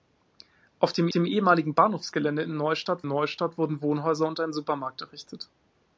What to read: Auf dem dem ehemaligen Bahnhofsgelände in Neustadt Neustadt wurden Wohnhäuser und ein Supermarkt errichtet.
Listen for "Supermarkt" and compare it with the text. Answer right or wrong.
right